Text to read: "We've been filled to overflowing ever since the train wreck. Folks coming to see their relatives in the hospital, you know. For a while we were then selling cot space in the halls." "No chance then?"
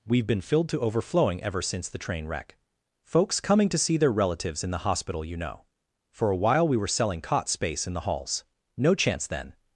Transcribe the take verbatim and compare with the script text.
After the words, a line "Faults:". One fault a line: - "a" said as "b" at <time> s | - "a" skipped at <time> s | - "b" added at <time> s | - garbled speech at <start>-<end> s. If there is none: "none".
"We've been filled to overflowing ever since the train wreck. Folks coming to see their relatives in the hospital, you know. For a while we were selling cot space in the halls." "No chance then?"
Faults:
- "then" skipped at 6.9 s